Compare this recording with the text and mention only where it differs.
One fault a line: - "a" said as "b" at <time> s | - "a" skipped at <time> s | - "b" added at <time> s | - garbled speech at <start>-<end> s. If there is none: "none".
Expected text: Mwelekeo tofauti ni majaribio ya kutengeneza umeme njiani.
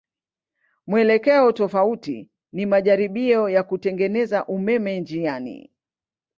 none